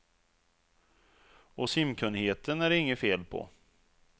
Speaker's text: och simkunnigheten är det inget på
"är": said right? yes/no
yes